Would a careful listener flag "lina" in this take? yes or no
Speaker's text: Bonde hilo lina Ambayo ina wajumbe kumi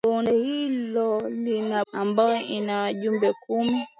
no